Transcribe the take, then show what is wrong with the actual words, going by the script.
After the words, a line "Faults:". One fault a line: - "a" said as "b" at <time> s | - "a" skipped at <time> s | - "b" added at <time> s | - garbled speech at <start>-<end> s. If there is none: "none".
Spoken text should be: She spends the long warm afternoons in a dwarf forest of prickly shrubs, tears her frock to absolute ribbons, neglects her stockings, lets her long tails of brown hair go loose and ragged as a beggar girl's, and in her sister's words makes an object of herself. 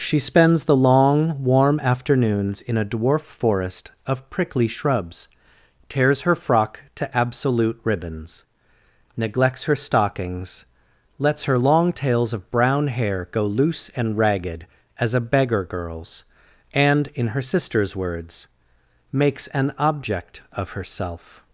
She spends the long warm afternoons in a dwarf forest of prickly shrubs, tears her frock to absolute ribbons, neglects her stockings, lets her long tails of brown hair go loose and ragged as a beggar girl's, and in her sister's words makes an object of herself.
Faults:
none